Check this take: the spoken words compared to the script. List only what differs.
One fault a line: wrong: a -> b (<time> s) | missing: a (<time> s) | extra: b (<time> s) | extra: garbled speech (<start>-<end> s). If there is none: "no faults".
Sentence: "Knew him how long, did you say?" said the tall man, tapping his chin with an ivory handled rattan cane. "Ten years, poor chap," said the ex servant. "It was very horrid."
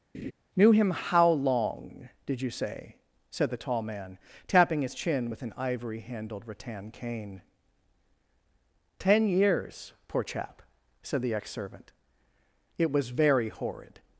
no faults